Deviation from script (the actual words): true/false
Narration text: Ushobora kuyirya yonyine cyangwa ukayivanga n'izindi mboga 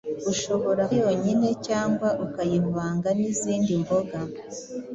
true